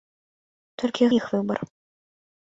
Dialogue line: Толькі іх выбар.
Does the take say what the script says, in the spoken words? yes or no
yes